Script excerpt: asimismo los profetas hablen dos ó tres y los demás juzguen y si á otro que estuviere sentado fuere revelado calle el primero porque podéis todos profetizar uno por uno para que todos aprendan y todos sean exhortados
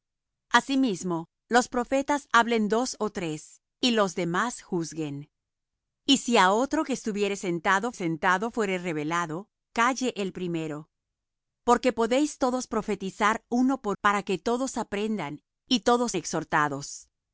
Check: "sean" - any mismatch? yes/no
yes